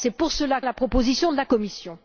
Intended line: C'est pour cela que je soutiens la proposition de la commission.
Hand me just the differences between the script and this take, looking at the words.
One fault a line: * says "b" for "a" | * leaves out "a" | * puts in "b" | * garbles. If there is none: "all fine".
* leaves out "que je soutiens"